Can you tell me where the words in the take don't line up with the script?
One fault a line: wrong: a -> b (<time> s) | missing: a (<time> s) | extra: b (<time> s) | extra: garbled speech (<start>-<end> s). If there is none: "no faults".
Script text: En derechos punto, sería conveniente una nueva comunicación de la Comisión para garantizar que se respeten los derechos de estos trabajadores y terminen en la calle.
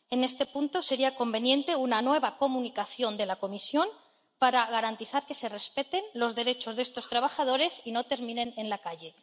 wrong: derechos -> este (0.2 s)
extra: no (7.9 s)